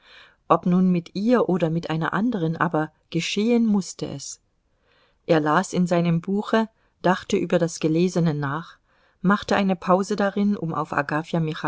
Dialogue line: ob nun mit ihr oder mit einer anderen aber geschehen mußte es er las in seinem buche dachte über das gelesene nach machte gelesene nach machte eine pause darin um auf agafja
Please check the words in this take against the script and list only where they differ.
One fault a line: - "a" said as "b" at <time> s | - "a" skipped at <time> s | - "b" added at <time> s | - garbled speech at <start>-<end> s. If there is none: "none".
- "gelesene nach machte" skipped at 9.6 s